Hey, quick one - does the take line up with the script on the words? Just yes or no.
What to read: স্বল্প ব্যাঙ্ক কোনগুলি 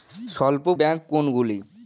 yes